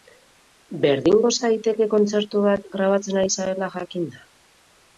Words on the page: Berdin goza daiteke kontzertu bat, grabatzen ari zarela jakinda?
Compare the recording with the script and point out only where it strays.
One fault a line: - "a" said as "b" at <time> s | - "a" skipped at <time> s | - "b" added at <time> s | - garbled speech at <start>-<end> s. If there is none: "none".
none